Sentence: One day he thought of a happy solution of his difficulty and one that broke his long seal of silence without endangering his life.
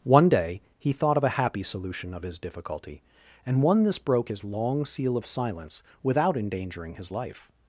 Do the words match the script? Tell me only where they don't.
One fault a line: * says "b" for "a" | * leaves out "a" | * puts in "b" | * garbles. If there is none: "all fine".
* says "this" for "that"